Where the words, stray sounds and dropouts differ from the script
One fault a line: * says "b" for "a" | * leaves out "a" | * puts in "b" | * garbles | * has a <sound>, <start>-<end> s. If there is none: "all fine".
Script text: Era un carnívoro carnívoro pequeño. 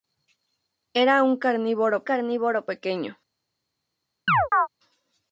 * has a chirp, 4.3-4.7 s